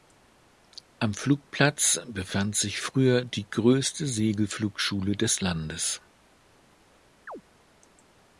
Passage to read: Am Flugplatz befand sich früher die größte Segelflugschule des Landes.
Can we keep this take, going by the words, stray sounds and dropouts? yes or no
no